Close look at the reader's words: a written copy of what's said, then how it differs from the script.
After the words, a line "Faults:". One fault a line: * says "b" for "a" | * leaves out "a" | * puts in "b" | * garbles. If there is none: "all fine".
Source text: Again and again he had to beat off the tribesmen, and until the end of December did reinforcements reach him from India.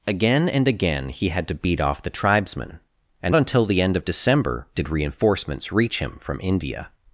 Again and again he had to beat off the tribesmen, and until the end of December did reinforcements reach him from India.
Faults:
all fine